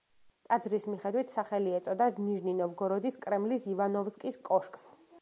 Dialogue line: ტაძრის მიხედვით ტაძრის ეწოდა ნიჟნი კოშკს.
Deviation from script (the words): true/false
true